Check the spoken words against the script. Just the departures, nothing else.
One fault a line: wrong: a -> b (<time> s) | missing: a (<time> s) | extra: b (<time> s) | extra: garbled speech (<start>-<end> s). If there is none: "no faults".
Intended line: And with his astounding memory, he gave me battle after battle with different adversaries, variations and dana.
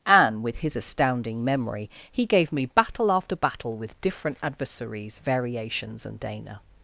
no faults